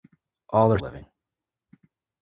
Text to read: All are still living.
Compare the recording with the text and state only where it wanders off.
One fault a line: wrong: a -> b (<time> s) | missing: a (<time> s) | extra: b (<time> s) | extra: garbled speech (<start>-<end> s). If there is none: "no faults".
missing: still (0.8 s)